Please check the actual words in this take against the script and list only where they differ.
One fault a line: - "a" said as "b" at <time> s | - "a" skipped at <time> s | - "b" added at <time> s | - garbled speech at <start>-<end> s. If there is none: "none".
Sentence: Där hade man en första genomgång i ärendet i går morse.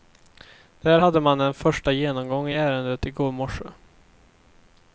none